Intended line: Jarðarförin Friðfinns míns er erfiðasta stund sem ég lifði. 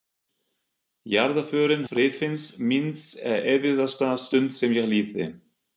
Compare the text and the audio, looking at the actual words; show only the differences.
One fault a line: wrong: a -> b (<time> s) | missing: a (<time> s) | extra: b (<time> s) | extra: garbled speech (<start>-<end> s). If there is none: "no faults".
no faults